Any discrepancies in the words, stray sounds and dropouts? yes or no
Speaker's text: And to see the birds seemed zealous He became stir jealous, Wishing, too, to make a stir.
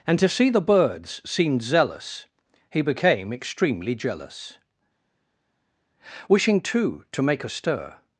yes